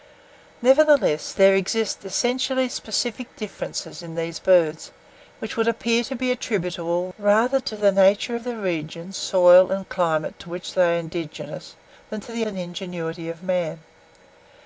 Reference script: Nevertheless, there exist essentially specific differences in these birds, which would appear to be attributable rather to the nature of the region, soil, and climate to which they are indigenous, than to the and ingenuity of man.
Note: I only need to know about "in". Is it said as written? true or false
true